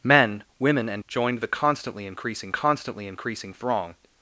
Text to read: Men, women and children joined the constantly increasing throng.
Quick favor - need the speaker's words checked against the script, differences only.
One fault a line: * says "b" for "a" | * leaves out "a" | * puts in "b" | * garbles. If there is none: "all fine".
* leaves out "children"
* puts in "constantly increasing"